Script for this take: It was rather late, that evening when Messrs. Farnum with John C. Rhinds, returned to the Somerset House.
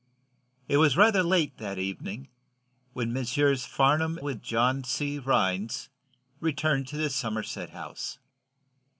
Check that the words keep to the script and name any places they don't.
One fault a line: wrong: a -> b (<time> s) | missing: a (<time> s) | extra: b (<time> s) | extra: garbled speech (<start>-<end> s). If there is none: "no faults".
no faults